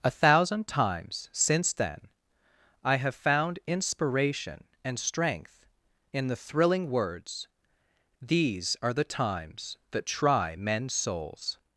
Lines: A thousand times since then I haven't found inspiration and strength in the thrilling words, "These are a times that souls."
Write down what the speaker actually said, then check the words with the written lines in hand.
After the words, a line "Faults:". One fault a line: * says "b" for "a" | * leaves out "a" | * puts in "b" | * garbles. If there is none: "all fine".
A thousand times since then I have found inspiration and strength in the thrilling words, "These are the times that try men's souls."
Faults:
* says "have" for "haven't"
* says "the" for "a"
* puts in "try men's"